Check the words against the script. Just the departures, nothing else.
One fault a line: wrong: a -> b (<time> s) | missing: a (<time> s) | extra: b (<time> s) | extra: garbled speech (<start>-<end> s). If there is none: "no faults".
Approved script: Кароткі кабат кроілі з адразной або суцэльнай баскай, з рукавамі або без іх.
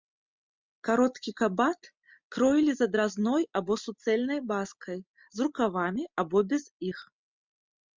no faults